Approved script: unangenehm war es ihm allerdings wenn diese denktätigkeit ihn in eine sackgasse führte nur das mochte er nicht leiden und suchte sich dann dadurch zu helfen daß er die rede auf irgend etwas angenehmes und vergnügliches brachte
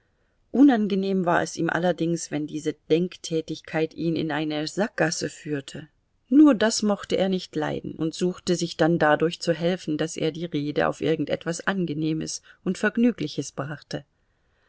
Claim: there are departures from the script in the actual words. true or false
false